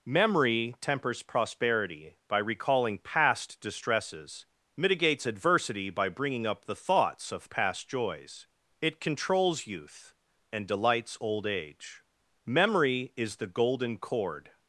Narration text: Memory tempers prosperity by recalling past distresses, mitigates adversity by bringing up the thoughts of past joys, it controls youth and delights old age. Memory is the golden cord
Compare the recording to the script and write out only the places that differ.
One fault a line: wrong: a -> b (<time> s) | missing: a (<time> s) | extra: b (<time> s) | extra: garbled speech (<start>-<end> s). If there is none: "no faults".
no faults